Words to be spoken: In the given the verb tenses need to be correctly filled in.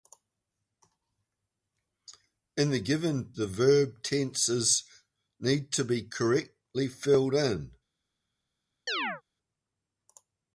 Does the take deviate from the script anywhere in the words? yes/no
no